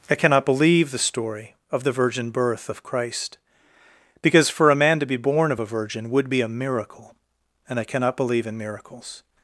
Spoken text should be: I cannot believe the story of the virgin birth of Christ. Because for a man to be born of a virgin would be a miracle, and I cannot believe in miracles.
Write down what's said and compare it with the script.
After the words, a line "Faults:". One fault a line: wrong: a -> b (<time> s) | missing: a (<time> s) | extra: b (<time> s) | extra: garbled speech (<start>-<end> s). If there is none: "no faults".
I cannot believe the story of the virgin birth of Christ. Because for a man to be born of a virgin would be a miracle, and I cannot believe in miracles.
Faults:
no faults